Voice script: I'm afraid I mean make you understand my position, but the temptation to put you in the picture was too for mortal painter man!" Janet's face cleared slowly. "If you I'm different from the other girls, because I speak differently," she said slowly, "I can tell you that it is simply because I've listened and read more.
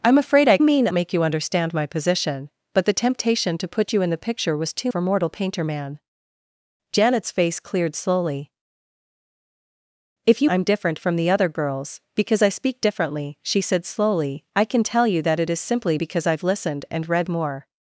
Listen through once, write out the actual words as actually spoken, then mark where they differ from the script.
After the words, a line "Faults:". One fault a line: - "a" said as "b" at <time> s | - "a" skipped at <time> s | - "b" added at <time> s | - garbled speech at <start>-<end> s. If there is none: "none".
I'm afraid I mean make you understand my position, but the temptation to put you in the picture was too for mortal painter man!" Janet's face cleared slowly. "If you I'm different from the other girls, because I speak differently," she said slowly, "I can tell you that it is simply because I've listened and read more.
Faults:
none